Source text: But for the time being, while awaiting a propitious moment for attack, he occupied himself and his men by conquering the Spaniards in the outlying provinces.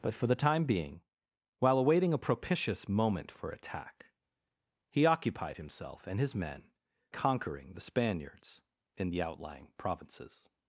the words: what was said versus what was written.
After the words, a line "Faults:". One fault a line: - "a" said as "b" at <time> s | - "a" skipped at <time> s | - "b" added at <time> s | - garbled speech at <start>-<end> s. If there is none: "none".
But for the time being, while awaiting a propitious moment for attack, he occupied himself and his men conquering the Spaniards in the outlying provinces.
Faults:
- "by" skipped at 6.7 s